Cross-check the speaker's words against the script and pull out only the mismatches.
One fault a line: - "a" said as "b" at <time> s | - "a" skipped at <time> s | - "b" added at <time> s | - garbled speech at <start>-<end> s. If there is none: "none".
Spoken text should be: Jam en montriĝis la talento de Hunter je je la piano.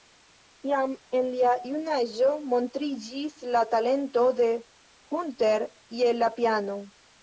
- "lia junaĝo" added at 1.3 s
- "je" skipped at 6.2 s